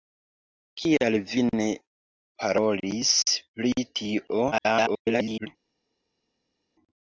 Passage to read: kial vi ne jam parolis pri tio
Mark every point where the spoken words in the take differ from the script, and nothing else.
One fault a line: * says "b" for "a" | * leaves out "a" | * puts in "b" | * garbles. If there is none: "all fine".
* leaves out "jam"
* garbles